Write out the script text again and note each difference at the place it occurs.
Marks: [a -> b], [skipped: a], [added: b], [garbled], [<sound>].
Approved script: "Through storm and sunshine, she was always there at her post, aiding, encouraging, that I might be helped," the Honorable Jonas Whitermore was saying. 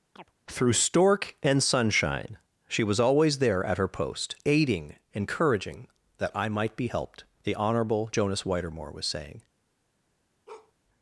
[chirp] "Through [storm -> stork] and sunshine, she was always there at her post, aiding, encouraging, that I might be helped," the Honorable Jonas Whitermore was saying. [bark]